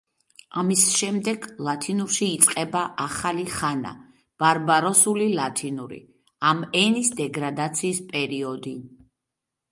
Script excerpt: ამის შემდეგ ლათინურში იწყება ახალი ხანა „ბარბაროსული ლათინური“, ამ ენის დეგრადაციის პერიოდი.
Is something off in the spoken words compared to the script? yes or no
no